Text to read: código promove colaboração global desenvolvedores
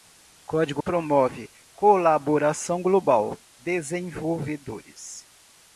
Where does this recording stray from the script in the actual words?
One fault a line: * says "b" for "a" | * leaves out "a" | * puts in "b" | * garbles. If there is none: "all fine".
all fine